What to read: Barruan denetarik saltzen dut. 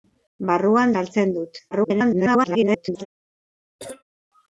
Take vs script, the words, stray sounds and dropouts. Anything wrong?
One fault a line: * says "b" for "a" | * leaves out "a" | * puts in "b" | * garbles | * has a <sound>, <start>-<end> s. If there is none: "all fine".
* leaves out "denetarik"
* garbles
* has a cough, 3.8-4.0 s